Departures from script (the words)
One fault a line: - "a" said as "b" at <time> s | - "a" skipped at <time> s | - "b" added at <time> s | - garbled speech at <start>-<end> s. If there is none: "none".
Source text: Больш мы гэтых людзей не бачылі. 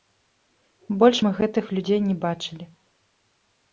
none